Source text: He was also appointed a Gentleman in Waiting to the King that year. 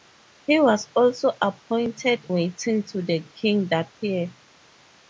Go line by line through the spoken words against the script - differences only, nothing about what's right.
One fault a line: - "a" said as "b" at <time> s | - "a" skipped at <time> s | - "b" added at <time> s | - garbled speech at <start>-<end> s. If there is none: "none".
- "a Gentleman in" skipped at 2.3 s